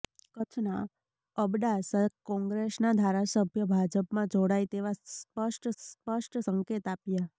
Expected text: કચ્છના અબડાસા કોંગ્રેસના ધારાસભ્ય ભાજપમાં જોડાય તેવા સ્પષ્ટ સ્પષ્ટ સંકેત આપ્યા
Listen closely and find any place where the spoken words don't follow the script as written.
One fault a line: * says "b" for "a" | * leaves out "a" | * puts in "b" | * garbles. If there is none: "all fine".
all fine